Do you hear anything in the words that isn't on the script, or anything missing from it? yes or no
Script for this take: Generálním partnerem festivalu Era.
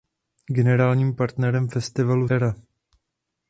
no